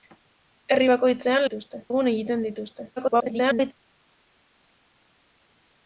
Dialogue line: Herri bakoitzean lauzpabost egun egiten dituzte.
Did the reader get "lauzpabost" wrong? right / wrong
wrong